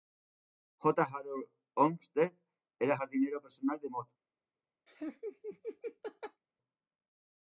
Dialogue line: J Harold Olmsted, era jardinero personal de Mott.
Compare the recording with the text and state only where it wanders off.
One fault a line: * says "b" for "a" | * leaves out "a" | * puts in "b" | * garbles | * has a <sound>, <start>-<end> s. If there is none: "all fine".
* has a laugh, 4.9-6.4 s